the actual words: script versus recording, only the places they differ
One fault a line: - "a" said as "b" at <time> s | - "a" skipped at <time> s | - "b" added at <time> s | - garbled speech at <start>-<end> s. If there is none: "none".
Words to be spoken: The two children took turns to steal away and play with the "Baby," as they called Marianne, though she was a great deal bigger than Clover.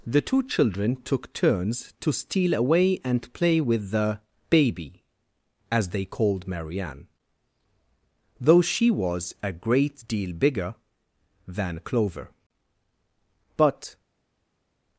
- "But" added at 13.6 s